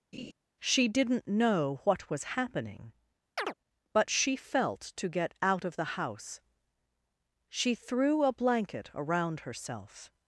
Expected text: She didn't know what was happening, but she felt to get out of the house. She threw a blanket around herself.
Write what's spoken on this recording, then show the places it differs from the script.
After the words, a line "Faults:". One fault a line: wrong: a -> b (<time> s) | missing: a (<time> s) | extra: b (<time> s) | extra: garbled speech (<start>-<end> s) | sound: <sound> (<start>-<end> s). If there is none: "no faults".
She didn't know what was happening, but she felt to get out of the house. She threw a blanket around herself.
Faults:
sound: laugh (0.1-0.3 s)
sound: chirp (3.4-3.5 s)